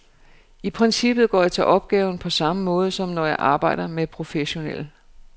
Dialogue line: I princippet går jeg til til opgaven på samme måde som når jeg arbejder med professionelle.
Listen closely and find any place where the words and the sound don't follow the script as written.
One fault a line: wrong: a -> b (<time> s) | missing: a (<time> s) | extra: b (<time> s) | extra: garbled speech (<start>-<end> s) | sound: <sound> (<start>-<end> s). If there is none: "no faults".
missing: til (1.6 s)